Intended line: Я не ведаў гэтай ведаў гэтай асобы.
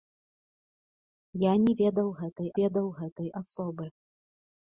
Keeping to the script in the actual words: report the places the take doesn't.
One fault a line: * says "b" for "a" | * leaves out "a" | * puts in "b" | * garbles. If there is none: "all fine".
all fine